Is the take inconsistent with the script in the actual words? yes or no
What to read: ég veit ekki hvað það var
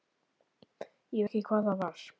yes